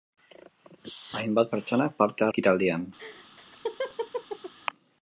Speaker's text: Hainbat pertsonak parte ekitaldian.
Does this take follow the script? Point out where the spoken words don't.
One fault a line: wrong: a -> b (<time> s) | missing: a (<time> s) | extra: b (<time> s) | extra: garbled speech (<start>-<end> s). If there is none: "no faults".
no faults